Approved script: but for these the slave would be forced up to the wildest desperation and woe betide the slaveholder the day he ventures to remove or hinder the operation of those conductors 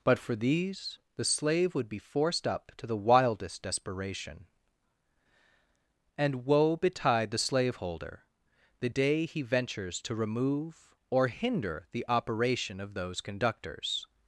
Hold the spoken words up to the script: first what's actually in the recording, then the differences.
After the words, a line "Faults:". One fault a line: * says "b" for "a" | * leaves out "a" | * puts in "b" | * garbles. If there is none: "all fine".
but for these the slave would be forced up to the wildest desperation and woe betide the slaveholder the day he ventures to remove or hinder the operation of those conductors
Faults:
all fine